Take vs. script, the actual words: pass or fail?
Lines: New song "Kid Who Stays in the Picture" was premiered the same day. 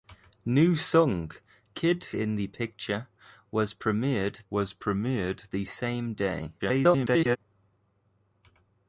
fail